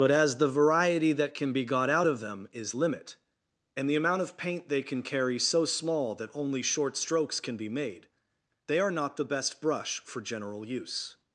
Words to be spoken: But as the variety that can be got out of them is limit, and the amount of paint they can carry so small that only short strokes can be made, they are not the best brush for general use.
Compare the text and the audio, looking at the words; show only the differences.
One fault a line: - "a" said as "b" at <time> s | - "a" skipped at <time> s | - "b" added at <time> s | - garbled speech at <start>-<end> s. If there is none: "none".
none